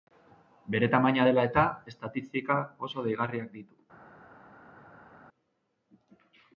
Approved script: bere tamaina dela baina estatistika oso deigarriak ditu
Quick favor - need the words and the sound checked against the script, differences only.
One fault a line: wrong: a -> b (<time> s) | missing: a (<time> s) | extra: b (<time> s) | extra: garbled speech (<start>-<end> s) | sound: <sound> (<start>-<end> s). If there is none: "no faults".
wrong: baina -> eta (1.5 s)